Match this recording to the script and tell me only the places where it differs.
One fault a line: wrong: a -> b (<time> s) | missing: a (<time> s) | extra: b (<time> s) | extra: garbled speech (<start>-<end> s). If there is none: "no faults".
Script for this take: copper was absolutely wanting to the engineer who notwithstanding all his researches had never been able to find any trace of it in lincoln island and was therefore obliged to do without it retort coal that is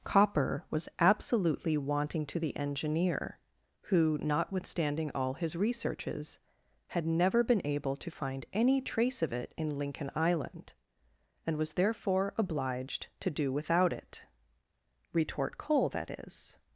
no faults